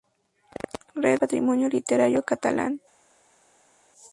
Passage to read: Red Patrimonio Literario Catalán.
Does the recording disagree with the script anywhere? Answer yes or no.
no